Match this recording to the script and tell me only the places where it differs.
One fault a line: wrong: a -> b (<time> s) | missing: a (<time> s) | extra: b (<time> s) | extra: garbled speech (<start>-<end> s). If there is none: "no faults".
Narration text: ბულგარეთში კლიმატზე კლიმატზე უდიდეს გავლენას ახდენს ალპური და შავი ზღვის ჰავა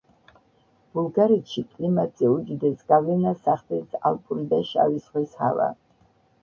missing: კლიმატზე (2.3 s)